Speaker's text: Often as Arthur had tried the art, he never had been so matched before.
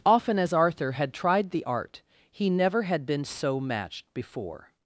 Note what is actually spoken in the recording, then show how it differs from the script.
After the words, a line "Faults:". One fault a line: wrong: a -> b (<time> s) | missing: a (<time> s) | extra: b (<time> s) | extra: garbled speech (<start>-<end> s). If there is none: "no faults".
Often as Arthur had tried the art, he never had been so matched before.
Faults:
no faults